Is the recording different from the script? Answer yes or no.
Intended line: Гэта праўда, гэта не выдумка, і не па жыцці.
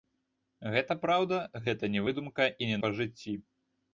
no